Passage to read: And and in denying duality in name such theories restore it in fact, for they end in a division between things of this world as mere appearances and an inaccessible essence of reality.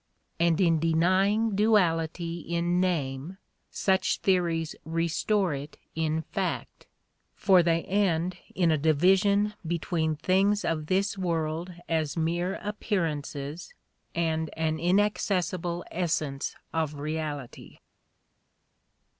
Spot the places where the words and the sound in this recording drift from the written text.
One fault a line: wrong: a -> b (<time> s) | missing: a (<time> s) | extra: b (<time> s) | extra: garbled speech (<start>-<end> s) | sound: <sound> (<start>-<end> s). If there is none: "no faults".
missing: and (0.6 s)